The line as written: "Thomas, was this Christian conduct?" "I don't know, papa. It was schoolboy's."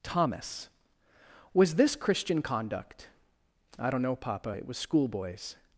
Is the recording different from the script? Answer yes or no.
no